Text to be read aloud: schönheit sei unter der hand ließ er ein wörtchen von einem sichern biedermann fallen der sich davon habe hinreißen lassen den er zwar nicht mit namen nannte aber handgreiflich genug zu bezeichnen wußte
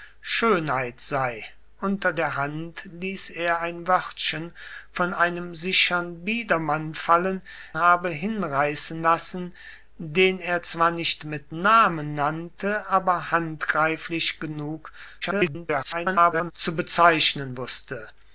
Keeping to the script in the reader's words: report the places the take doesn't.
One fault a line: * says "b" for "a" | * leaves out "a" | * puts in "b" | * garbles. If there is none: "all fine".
* leaves out "der sich davon"
* garbles